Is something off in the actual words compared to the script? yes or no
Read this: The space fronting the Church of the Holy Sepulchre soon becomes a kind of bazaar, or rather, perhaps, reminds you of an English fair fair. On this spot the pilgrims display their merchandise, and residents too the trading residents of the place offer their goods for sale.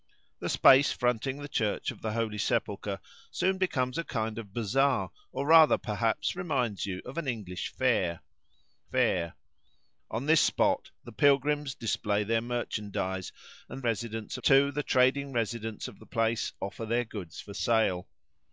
no